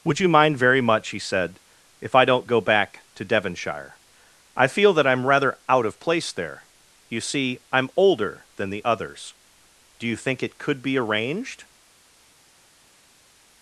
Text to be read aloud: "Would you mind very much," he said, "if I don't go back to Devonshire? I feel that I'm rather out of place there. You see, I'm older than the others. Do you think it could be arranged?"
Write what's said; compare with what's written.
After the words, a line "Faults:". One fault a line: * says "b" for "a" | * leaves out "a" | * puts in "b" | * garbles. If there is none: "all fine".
"Would you mind very much," he said, "if I don't go back to Devonshire? I feel that I'm rather out of place there. You see, I'm older than the others. Do you think it could be arranged?"
Faults:
all fine